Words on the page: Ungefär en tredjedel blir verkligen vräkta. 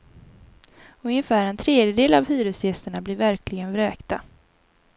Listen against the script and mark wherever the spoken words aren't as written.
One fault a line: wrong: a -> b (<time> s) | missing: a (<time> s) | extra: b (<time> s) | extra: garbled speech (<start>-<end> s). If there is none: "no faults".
extra: av hyresgästerna (2.1 s)